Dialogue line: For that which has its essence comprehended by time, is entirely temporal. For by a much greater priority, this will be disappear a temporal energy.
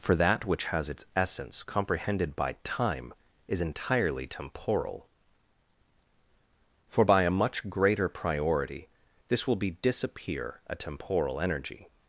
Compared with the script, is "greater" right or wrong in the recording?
right